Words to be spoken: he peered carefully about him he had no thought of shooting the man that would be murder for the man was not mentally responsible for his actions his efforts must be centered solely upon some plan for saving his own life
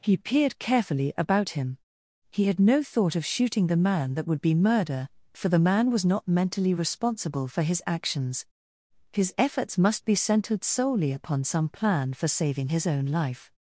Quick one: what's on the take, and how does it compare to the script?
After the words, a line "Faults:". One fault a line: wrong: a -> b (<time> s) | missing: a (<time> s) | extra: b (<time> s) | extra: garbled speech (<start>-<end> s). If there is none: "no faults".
he peered carefully about him he had no thought of shooting the man that would be murder for the man was not mentally responsible for his actions his efforts must be centered solely upon some plan for saving his own life
Faults:
no faults